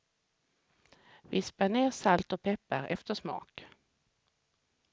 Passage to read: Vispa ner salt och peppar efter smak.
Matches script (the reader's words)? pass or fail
pass